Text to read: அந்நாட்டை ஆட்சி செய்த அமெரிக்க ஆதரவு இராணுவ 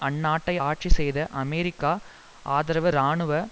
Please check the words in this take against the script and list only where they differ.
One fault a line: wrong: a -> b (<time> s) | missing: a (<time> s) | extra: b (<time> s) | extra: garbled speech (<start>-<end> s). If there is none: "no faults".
no faults